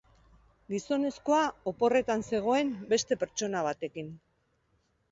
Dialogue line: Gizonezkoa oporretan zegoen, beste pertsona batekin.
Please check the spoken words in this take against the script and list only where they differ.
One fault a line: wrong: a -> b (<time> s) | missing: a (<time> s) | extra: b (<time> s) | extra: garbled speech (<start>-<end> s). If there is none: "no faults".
no faults